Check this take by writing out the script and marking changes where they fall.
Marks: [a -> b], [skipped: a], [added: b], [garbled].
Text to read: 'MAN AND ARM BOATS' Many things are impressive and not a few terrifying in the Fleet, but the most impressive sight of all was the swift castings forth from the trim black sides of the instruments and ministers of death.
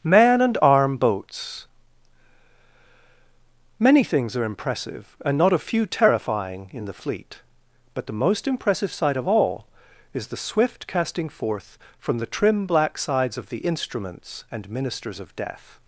'MAN AND ARM BOATS' Many things are impressive and not a few terrifying in the Fleet, but the most impressive sight of all [was -> is] the swift [castings -> casting] forth from the trim black sides of the instruments and ministers of death.